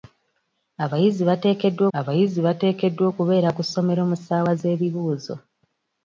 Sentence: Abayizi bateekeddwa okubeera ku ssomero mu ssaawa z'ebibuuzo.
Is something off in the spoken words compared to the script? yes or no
yes